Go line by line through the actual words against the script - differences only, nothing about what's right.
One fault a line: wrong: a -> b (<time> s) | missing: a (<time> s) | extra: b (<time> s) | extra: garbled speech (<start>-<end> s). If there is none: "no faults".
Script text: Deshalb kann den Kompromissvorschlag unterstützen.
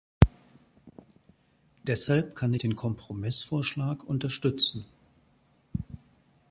no faults